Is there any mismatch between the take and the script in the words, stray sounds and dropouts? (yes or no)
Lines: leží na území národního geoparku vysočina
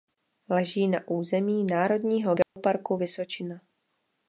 yes